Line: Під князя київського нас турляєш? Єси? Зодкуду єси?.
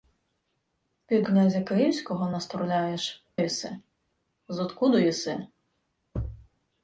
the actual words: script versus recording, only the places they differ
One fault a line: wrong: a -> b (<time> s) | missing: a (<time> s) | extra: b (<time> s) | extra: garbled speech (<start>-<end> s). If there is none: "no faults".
no faults